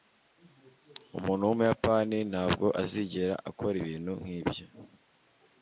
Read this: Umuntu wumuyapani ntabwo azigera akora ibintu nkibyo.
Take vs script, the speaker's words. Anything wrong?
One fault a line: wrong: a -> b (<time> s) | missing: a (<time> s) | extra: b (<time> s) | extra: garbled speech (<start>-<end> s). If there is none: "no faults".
no faults